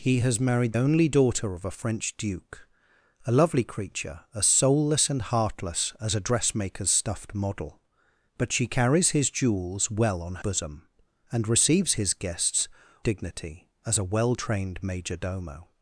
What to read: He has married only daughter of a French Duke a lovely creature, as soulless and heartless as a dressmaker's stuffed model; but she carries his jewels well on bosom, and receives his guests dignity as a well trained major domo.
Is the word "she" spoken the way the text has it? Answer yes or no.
yes